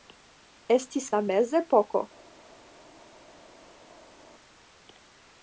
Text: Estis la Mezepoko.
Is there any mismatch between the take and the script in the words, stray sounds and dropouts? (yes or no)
no